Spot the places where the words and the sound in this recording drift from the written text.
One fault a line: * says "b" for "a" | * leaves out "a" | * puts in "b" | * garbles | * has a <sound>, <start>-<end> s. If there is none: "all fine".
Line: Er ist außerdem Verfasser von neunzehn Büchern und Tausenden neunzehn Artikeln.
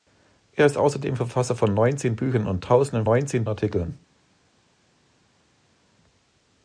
all fine